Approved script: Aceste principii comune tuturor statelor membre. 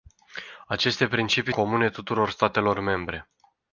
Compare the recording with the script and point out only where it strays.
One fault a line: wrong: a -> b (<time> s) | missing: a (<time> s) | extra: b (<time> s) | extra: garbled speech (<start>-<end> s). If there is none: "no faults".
no faults